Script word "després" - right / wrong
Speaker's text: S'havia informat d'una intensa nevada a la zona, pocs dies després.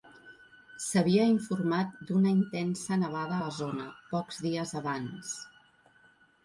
wrong